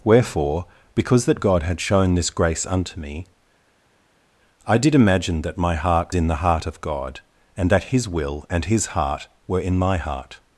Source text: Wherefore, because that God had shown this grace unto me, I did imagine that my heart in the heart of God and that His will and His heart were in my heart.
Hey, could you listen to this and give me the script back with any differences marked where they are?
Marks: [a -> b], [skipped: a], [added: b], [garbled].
Wherefore, because that God had shown this grace unto me, I did imagine that my heart in the heart of God and that His will and His heart were in my heart.